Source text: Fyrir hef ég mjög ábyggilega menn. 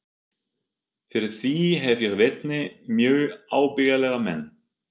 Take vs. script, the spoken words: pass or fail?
fail